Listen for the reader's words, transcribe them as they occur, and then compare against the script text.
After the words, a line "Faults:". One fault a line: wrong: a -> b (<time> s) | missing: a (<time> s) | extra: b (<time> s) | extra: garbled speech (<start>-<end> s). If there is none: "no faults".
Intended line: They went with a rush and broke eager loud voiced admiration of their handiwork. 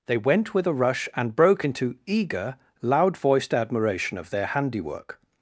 They went with a rush and broke into eager loud voiced admiration of their handiwork.
Faults:
extra: into (1.6 s)